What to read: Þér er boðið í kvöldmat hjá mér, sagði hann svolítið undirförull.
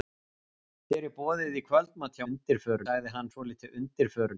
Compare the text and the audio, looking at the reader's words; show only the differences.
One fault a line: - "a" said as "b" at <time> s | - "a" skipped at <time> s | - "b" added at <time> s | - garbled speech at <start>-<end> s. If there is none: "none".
- "mér" said as "undirförull" at 2.3 s